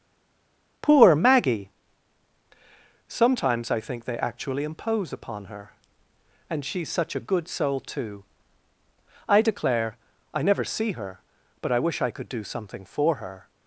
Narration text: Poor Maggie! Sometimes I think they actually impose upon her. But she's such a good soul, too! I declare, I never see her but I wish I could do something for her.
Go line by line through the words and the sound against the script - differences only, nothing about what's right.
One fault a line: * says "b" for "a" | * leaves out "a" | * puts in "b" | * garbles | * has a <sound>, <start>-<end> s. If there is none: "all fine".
* says "And" for "But"